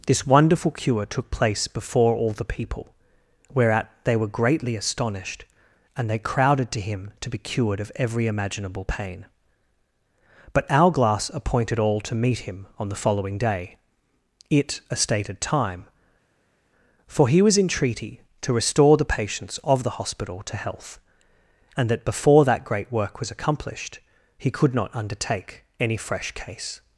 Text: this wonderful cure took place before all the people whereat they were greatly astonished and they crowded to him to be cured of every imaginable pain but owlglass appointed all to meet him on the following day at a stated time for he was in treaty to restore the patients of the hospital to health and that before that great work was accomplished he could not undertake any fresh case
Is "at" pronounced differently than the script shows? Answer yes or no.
yes